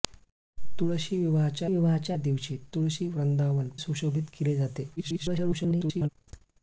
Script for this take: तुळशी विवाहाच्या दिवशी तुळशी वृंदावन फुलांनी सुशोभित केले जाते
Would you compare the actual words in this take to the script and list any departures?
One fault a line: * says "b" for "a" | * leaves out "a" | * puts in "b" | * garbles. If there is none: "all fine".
* puts in "विवाहाच्या"
* leaves out "फुलांनी"
* garbles